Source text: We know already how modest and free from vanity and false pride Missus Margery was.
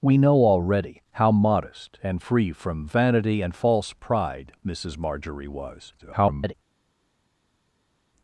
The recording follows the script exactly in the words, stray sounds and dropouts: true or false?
false